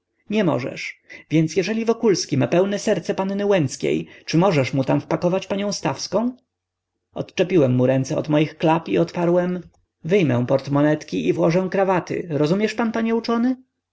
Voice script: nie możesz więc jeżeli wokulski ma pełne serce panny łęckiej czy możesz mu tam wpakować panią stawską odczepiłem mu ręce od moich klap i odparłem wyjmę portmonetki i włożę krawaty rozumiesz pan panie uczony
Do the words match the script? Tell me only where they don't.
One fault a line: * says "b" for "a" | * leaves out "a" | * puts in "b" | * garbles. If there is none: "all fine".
all fine